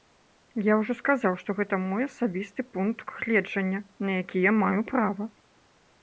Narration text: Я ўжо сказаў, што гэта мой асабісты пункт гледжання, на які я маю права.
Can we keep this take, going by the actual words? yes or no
yes